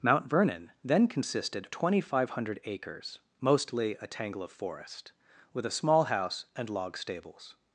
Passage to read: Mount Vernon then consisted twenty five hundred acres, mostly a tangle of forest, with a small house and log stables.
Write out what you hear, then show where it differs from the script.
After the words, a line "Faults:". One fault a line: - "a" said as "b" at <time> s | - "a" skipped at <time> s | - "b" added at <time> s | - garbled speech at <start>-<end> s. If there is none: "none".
Mount Vernon then consisted twenty five hundred acres, mostly a tangle of forest, with a small house and log stables.
Faults:
none